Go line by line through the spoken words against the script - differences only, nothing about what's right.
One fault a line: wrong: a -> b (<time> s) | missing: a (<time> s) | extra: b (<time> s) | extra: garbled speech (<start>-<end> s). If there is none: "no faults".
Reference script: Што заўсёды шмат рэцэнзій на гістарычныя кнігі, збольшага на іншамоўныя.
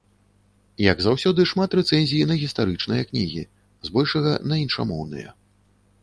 wrong: Што -> Як (0.8 s)